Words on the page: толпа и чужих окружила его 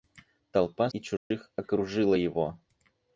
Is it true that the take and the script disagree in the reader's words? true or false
false